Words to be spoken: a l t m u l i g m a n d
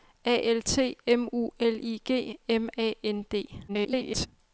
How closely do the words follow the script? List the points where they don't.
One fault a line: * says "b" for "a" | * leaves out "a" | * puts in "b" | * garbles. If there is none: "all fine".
* garbles